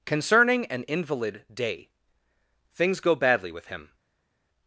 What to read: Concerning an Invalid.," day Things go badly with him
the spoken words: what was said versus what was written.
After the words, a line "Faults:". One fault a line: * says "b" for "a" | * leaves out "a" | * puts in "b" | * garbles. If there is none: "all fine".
Concerning an Invalid.," day Things go badly with him
Faults:
all fine